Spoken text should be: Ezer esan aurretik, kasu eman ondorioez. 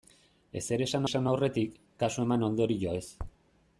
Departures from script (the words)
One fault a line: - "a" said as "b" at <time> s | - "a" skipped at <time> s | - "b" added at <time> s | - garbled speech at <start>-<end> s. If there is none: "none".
- "esan" added at 1.1 s